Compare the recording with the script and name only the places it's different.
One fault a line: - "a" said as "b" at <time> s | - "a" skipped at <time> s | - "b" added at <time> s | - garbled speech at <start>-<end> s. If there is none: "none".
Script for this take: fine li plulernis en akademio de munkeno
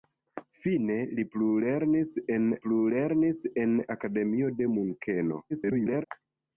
- "plulernis en" added at 2.7 s
- garbled speech at 5.5-6.1 s